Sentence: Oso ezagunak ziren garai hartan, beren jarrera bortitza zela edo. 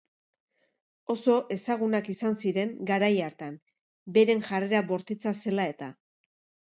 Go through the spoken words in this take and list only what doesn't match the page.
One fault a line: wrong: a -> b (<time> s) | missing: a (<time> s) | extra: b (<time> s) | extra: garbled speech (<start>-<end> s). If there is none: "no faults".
extra: izan (2.1 s)
wrong: edo -> eta (5.8 s)